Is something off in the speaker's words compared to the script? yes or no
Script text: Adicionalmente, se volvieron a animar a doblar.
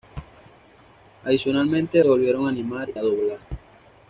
no